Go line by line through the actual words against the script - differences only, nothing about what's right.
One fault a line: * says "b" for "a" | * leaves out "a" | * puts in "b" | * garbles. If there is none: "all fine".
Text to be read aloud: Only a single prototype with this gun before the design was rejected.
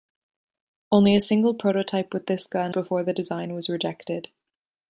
all fine